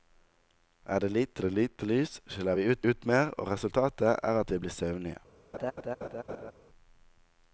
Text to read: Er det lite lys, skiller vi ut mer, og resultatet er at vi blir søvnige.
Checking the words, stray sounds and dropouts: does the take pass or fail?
fail